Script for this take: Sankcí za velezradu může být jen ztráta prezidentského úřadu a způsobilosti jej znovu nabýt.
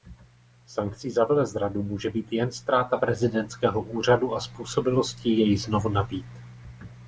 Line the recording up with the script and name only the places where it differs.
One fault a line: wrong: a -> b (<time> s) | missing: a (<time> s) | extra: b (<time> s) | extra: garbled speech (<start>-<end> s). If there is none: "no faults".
no faults